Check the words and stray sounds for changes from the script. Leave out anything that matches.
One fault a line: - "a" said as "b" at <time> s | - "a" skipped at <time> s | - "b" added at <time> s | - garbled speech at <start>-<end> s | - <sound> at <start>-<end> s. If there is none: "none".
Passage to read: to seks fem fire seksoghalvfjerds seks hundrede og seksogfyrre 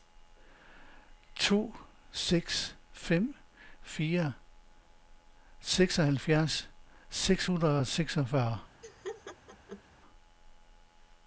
- laugh at 8.8-9.8 s